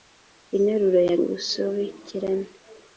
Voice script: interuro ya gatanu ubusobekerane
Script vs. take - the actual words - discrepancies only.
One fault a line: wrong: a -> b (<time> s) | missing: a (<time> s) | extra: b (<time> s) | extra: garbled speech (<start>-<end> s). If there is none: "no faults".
missing: gatanu (1.2 s)